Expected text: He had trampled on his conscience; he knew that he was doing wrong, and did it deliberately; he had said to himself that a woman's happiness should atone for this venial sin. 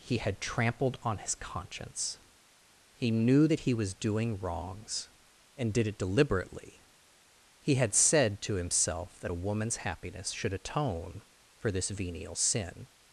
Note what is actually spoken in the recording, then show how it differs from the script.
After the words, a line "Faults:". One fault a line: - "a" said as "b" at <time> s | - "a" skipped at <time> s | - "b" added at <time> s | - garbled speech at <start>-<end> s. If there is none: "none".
He had trampled on his conscience; he knew that he was doing wrongs, and did it deliberately; he had said to himself that a woman's happiness should atone for this venial sin.
Faults:
- "wrong" said as "wrongs" at 4.4 s